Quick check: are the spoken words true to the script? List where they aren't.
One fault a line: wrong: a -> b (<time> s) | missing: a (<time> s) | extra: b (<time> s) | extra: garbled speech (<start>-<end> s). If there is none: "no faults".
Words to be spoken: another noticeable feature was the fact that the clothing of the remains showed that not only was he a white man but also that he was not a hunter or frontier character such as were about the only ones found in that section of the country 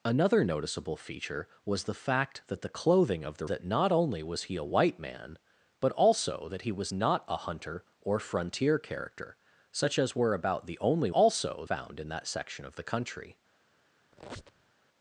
missing: remains showed (3.5 s)
wrong: ones -> also (11.1 s)